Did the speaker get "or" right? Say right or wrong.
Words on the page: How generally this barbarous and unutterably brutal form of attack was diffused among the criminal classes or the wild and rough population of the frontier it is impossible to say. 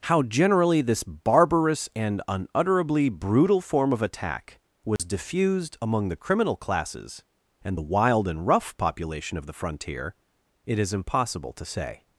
wrong